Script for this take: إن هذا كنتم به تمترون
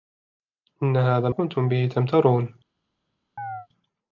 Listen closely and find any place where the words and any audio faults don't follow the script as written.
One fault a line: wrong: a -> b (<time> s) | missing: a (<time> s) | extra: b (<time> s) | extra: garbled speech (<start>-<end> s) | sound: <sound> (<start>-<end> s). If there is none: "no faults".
sound: chirp (3.4-3.7 s)